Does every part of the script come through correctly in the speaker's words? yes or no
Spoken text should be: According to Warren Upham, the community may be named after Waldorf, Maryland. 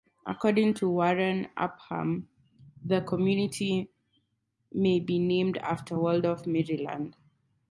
yes